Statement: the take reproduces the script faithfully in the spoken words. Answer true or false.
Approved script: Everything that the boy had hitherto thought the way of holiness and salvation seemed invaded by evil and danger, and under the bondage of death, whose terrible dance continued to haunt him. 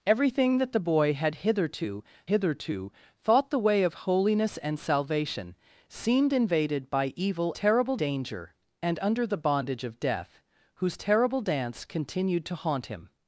false